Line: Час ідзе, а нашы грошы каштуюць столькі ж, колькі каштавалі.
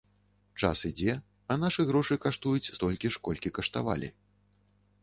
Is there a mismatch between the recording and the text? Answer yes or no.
no